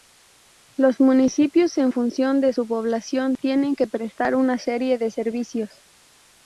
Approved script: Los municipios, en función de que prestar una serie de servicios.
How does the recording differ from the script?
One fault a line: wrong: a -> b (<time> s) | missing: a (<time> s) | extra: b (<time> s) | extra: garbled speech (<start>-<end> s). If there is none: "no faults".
extra: su población tienen (2.5 s)